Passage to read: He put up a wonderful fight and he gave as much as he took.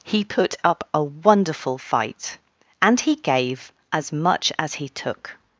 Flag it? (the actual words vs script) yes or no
no